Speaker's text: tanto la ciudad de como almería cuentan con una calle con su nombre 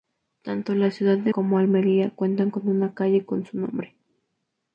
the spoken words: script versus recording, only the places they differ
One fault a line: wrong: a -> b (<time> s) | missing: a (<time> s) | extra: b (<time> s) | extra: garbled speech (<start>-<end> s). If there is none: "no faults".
no faults